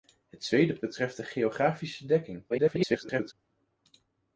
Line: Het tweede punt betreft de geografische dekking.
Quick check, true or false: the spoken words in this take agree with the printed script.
false